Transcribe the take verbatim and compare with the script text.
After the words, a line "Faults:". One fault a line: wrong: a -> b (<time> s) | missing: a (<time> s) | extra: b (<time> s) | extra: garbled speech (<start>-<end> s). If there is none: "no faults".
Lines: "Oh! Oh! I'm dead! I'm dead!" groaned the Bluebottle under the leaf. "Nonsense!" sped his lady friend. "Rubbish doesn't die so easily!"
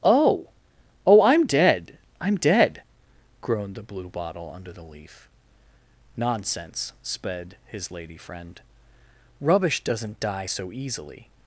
"Oh! Oh! I'm dead! I'm dead!" groaned the Bluebottle under the leaf. "Nonsense!" sped his lady friend. "Rubbish doesn't die so easily!"
Faults:
no faults